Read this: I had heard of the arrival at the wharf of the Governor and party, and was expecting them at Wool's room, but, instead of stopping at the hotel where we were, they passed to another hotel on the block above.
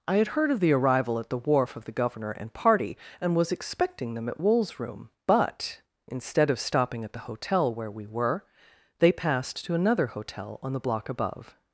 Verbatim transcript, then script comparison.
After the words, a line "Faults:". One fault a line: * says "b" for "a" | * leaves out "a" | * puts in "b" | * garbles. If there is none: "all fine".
I had heard of the arrival at the wharf of the Governor and party, and was expecting them at Wool's room, but, instead of stopping at the hotel where we were, they passed to another hotel on the block above.
Faults:
all fine